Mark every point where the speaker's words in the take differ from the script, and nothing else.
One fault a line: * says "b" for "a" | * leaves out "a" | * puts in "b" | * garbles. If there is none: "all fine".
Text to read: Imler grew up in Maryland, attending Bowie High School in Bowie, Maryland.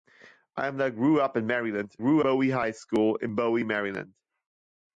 * says "grew" for "attending"